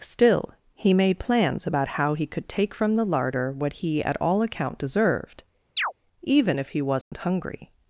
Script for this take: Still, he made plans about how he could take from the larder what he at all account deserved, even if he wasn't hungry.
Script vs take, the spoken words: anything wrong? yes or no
no